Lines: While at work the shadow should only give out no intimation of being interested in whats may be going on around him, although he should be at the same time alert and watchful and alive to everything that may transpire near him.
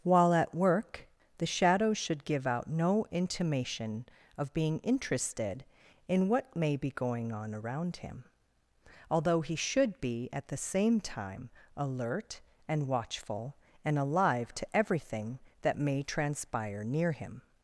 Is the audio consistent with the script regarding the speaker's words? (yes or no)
no